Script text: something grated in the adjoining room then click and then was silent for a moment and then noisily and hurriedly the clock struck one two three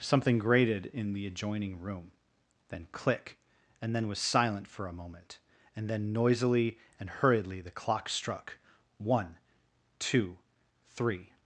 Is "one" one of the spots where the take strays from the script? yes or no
no